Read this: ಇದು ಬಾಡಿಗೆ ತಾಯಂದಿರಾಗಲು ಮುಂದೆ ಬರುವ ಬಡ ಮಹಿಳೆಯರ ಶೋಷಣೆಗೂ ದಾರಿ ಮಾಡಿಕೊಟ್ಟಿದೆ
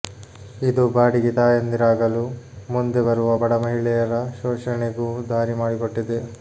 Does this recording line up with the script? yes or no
yes